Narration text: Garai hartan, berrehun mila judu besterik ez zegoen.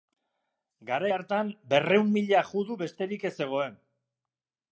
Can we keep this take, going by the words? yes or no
yes